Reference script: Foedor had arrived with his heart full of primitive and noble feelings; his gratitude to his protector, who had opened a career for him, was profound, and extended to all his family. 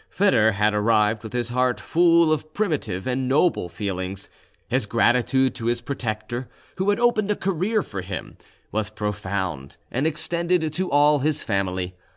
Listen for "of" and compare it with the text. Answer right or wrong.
right